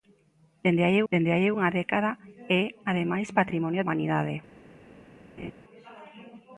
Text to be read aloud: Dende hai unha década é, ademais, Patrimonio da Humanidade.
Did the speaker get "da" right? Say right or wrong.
wrong